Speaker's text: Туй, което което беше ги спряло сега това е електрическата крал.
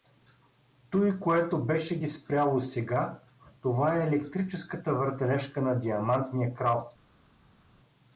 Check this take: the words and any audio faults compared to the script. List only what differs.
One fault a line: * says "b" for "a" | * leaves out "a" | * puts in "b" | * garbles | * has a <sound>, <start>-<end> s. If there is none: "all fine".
* leaves out "което"
* puts in "въртележка на Диамантния"